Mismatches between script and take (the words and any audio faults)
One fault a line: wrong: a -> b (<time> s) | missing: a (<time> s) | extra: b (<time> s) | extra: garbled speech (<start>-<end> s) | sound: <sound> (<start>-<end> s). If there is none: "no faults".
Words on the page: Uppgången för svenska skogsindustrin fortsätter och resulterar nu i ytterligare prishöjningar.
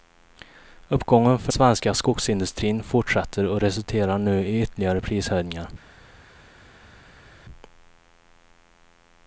no faults